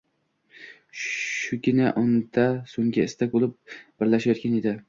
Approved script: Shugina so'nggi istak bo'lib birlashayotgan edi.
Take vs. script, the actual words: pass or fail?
fail